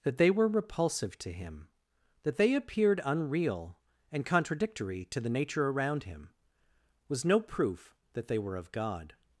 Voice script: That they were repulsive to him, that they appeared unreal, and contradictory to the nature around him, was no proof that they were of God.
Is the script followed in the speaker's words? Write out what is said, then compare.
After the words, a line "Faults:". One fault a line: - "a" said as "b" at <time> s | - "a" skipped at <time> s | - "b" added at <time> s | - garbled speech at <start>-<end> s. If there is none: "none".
That they were repulsive to him, that they appeared unreal, and contradictory to the nature around him, was no proof that they were of God.
Faults:
none